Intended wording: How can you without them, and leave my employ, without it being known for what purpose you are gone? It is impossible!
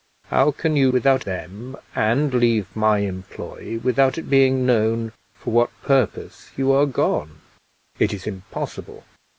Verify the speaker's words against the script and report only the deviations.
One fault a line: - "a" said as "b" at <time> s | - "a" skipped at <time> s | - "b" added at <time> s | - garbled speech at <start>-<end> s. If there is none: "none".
none